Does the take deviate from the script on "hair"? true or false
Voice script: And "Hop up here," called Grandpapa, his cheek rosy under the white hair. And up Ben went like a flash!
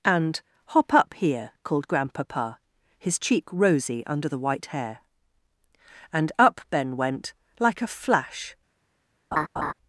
false